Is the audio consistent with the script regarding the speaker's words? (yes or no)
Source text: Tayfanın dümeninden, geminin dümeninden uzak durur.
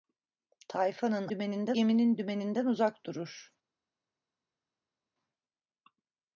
yes